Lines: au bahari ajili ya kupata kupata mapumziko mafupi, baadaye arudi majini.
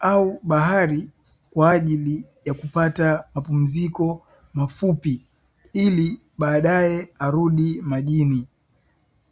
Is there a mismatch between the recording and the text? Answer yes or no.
yes